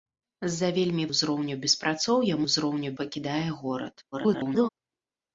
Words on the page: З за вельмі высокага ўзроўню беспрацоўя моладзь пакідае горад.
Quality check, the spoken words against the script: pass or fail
fail